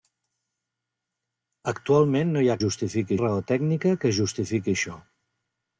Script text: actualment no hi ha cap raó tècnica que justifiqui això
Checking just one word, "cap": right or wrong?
wrong